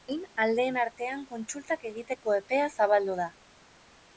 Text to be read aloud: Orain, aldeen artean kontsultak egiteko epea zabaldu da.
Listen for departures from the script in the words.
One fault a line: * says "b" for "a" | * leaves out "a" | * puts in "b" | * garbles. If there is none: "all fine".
all fine